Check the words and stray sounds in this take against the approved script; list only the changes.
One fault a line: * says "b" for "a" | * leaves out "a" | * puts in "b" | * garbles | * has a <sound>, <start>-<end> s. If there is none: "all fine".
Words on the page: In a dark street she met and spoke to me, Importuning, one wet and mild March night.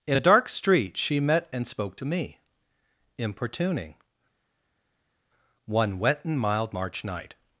all fine